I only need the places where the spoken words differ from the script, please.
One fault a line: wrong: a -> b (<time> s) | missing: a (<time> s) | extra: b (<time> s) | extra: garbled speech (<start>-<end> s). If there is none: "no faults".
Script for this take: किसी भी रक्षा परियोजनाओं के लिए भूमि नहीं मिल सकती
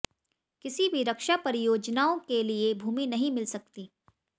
no faults